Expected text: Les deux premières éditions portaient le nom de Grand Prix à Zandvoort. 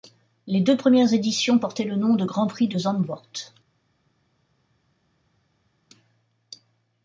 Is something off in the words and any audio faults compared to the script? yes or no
yes